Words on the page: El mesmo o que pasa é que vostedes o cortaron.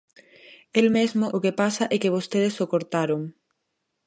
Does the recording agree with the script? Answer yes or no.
yes